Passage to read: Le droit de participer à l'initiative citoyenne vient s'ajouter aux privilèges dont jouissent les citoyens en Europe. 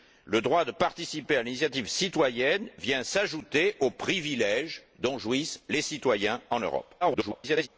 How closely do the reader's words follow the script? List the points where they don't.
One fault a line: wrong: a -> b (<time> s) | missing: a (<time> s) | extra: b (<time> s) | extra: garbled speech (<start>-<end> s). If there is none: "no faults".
extra: garbled speech (7.0-7.7 s)